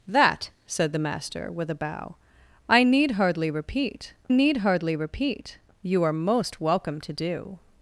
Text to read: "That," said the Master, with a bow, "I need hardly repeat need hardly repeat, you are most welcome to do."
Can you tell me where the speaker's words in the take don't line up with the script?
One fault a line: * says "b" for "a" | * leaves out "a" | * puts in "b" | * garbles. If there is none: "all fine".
all fine